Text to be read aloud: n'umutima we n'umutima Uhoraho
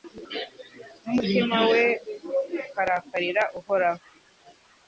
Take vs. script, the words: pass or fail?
fail